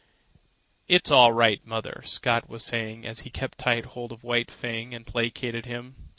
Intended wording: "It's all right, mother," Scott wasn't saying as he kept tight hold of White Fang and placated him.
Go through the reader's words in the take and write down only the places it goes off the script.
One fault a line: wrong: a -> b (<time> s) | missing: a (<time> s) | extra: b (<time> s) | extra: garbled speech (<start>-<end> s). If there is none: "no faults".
wrong: wasn't -> was (2.5 s)